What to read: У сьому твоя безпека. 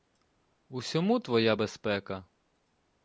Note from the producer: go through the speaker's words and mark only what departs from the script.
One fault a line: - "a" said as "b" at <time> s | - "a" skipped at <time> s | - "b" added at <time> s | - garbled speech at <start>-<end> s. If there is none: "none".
none